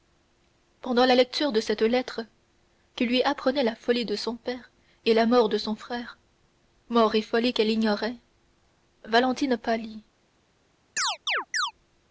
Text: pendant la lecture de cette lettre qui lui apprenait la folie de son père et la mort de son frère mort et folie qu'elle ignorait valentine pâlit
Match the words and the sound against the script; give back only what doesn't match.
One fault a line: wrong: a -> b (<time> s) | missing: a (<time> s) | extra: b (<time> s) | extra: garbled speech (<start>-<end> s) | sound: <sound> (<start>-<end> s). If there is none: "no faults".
sound: chirp (11.0-11.7 s)